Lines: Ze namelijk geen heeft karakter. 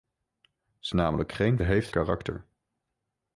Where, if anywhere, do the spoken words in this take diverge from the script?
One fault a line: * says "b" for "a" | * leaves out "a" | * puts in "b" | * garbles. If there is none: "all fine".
all fine